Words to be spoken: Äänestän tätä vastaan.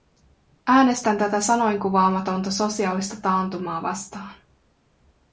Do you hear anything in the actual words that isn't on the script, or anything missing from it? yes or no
yes